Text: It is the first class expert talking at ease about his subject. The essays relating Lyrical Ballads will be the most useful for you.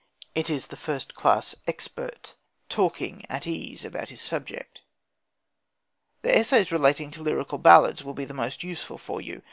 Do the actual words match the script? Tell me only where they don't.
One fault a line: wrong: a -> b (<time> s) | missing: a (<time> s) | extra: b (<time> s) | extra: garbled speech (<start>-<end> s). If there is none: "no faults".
extra: to (7.1 s)